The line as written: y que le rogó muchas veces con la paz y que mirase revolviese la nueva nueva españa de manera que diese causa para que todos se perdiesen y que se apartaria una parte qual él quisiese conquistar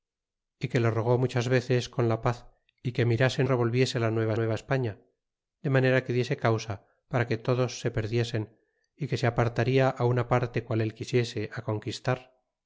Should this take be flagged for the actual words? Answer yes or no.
no